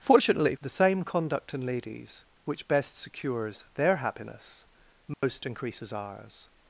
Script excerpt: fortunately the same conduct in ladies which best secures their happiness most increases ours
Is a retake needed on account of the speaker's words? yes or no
no